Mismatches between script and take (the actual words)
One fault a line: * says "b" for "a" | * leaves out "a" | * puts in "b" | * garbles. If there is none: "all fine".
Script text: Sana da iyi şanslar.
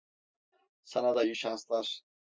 all fine